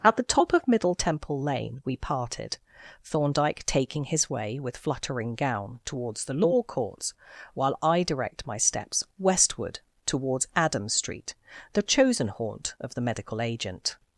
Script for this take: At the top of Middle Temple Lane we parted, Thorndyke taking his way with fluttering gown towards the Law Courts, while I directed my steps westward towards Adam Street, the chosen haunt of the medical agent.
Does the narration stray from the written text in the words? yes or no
yes